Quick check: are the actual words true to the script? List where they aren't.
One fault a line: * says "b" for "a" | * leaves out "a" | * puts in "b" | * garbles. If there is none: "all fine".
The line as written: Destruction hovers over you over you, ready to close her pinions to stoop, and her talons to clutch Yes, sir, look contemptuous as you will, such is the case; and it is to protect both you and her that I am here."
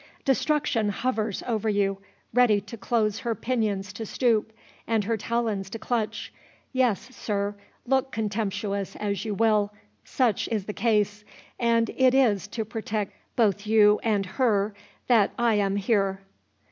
* leaves out "over you"